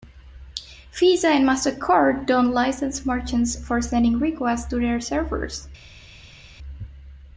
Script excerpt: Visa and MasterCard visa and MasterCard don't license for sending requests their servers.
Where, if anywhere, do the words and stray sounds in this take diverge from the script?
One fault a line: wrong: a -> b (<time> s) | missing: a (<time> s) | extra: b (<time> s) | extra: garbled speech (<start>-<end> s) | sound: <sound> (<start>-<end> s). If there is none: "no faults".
missing: visa and MasterCard (2.2 s)
extra: merchants (3.0 s)
extra: to (4.7 s)